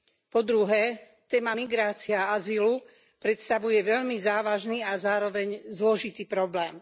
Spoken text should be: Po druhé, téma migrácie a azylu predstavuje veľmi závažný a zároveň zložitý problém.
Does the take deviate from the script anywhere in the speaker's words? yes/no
no